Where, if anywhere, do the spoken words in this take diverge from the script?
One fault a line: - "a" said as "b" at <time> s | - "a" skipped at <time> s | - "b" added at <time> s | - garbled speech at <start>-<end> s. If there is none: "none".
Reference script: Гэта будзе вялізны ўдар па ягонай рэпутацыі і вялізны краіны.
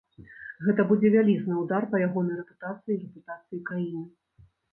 - "вялізны" said as "рэпутацыі" at 3.1 s